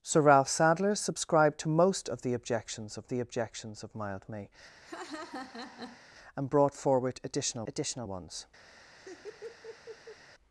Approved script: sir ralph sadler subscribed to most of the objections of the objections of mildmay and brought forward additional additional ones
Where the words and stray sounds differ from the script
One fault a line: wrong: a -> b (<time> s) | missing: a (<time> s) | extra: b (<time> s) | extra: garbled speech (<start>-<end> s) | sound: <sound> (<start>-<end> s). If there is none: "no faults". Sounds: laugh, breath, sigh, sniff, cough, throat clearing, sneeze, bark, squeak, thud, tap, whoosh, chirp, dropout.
sound: laugh (4.8-6.1 s)
sound: laugh (8.7-10.2 s)